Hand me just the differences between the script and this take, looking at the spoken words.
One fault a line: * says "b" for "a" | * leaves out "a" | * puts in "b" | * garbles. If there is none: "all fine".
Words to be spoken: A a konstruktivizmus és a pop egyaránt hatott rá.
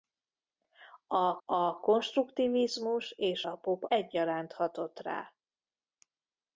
all fine